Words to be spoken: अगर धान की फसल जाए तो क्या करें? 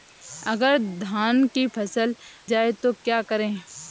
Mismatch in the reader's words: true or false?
false